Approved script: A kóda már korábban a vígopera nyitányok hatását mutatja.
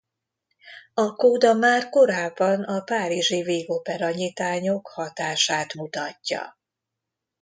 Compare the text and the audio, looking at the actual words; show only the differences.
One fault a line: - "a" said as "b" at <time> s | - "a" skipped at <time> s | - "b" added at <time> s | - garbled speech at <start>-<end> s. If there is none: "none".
- "párizsi" added at 2.8 s